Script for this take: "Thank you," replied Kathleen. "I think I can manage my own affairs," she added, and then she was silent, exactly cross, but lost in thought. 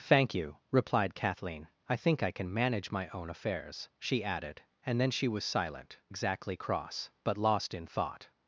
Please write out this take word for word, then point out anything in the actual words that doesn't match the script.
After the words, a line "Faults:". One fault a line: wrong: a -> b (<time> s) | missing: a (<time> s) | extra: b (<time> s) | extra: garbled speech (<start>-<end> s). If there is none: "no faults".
"Thank you," replied Kathleen. "I think I can manage my own affairs," she added, and then she was silent, exactly cross, but lost in thought.
Faults:
no faults